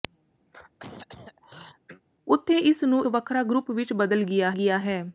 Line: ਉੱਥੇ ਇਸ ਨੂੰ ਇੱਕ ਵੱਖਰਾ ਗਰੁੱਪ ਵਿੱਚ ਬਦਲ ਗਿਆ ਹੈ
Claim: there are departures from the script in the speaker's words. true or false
true